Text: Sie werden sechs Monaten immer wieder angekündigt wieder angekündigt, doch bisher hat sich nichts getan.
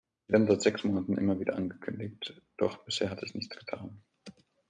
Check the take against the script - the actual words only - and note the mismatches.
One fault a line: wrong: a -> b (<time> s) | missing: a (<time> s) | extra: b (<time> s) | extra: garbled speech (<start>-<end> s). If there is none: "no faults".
extra: seit (0.5 s)
missing: wieder angekündigt (2.4 s)